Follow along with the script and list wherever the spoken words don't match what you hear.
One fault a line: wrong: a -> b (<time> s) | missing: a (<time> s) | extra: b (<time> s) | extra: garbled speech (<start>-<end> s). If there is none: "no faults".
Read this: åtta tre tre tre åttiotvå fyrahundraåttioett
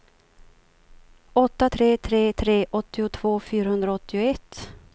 no faults